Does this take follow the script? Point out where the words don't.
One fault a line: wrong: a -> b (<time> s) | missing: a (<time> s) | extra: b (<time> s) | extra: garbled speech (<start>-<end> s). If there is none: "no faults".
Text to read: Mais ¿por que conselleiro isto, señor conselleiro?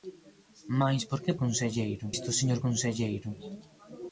no faults